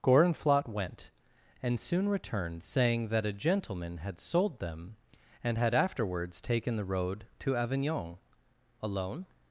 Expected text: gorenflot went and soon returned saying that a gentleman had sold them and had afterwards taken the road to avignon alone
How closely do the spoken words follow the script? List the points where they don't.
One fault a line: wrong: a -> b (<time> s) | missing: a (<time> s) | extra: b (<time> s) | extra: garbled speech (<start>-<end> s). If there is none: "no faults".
no faults